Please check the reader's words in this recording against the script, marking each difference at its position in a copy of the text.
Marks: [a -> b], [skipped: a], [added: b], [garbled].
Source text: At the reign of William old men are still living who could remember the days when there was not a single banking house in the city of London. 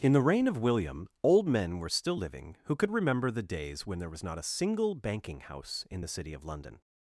[At -> In] the reign of William old men [are -> were] still living who could remember the days when there was not a single banking house in the city of London.